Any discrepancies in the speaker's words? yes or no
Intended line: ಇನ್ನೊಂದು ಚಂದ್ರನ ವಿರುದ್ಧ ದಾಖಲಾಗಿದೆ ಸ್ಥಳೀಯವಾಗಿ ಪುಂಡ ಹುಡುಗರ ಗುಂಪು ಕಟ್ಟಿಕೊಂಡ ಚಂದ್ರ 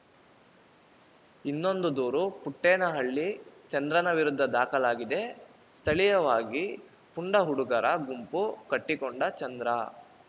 yes